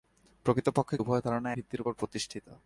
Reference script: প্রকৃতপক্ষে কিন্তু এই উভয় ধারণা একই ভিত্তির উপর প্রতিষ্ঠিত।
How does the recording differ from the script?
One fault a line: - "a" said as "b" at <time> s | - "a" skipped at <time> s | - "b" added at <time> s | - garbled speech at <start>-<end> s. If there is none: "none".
- "কিন্তু এই" skipped at 1.0 s
- "একই" skipped at 1.5 s